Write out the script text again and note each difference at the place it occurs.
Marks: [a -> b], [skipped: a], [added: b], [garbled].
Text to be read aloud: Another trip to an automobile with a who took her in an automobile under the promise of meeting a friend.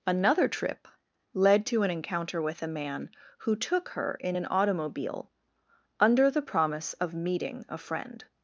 Another trip [added: led] to an [automobile -> encounter] with a [added: man] who took her in an automobile under the promise of meeting a friend.